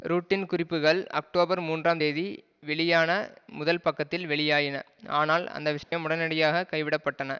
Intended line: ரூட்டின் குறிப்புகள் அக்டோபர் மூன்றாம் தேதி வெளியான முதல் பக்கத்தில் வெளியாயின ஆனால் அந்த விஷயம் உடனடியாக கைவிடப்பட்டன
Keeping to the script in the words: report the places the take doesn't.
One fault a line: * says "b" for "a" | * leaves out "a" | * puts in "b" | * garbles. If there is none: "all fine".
all fine